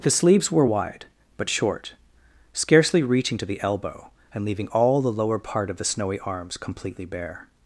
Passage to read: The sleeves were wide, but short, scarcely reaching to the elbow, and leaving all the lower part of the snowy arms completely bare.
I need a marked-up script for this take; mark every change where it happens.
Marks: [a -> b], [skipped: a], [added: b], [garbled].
The sleeves were wide, but short, scarcely reaching to the elbow, and leaving all the lower part of the snowy arms completely bare.